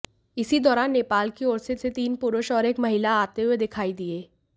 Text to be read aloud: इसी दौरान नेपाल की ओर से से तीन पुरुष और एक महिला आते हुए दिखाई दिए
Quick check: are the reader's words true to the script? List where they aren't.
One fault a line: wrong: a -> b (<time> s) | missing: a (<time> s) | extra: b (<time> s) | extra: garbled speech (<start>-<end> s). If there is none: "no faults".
no faults